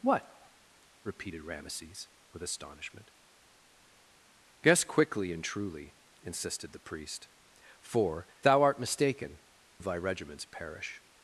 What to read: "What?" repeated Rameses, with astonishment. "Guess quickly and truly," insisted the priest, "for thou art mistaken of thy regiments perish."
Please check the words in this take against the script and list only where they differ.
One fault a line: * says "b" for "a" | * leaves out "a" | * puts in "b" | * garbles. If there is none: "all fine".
all fine